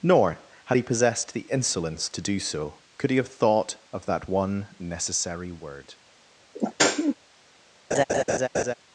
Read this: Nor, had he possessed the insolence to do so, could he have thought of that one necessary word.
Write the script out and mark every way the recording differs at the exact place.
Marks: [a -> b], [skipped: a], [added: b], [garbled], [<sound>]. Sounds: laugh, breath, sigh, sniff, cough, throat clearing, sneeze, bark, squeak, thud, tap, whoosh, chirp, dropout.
Nor, had he possessed the insolence to do so, could he have thought of that one necessary word. [sneeze] [laugh]